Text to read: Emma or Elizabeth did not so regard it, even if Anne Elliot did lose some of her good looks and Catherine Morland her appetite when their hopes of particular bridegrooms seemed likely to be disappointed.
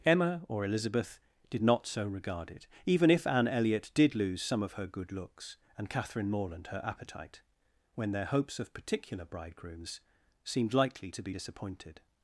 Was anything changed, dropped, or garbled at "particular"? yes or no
no